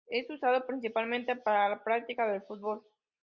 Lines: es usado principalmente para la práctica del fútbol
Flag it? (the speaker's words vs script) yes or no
no